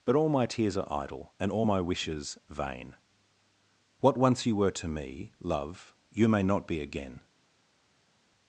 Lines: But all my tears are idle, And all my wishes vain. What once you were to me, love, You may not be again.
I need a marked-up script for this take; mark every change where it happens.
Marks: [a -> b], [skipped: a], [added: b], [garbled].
But all my tears are idle, And all my wishes vain. What once you were to me, love, You may not be again.